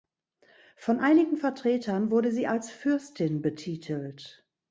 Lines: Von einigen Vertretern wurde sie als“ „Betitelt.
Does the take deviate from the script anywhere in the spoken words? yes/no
yes